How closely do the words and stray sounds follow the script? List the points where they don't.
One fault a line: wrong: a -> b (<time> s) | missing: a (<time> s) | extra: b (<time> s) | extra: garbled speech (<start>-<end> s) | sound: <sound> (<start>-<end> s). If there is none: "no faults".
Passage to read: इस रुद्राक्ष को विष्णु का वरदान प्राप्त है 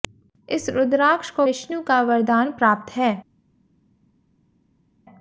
no faults